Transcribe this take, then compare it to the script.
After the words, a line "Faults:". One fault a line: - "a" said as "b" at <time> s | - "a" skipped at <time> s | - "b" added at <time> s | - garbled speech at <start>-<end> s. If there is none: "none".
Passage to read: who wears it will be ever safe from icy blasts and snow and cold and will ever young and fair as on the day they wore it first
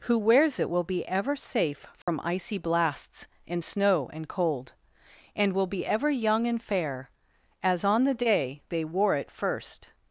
who wears it will be ever safe from icy blasts and snow and cold and will be ever young and fair as on the day they wore it first
Faults:
- "be" added at 5.7 s